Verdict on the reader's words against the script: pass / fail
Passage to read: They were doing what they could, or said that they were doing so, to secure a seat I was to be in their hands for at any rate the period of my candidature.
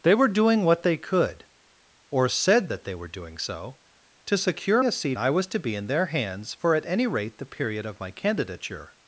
pass